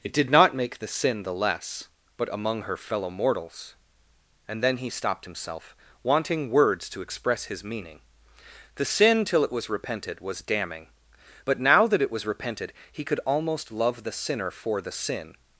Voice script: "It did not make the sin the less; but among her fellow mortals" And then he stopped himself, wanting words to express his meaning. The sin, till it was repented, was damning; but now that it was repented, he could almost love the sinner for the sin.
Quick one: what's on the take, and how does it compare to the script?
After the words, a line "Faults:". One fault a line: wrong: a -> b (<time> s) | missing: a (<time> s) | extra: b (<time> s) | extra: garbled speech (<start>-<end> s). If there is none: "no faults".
"It did not make the sin the less; but among her fellow mortals" And then he stopped himself, wanting words to express his meaning. The sin, till it was repented, was damning; but now that it was repented, he could almost love the sinner for the sin.
Faults:
no faults